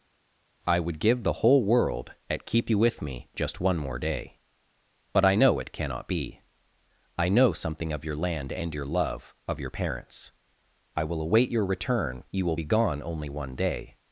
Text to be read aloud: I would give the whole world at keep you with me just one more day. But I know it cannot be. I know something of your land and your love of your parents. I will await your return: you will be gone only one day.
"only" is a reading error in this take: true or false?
false